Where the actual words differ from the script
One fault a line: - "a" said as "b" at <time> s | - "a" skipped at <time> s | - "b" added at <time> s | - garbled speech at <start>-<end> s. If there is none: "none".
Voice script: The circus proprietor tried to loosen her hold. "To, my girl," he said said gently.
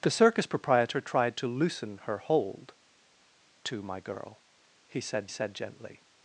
none